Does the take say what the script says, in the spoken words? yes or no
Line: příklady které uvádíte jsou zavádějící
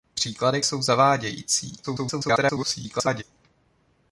no